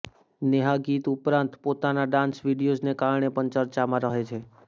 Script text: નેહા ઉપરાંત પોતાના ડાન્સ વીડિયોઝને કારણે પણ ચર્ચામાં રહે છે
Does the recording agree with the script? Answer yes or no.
no